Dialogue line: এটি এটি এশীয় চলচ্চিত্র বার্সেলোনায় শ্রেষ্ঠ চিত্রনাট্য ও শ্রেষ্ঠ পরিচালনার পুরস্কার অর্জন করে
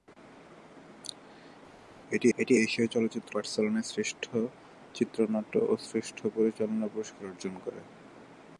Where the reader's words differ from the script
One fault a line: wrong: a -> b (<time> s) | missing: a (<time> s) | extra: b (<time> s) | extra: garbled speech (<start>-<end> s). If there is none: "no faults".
no faults